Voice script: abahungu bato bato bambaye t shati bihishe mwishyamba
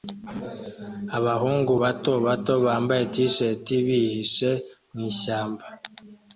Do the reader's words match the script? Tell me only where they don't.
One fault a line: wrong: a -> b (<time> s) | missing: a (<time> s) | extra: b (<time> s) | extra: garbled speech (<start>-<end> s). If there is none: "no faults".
no faults